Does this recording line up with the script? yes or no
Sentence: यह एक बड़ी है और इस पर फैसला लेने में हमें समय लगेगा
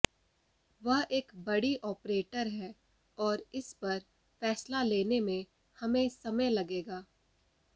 no